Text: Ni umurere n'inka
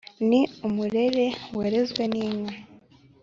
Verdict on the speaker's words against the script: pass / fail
fail